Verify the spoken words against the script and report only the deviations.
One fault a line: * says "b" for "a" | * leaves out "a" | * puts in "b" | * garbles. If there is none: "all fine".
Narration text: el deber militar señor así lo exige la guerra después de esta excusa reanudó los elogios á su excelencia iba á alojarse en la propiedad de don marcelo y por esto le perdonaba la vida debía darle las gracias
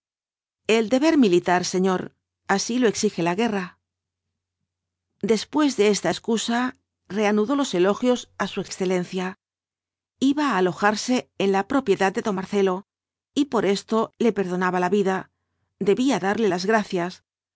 all fine